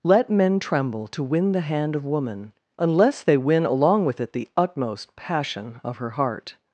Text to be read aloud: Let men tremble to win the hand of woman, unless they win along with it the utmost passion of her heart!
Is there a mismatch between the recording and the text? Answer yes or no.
no